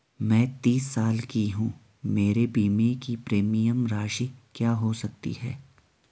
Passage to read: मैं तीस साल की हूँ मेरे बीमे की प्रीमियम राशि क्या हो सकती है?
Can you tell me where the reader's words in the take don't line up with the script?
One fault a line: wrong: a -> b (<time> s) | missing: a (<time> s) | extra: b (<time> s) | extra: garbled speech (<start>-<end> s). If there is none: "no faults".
no faults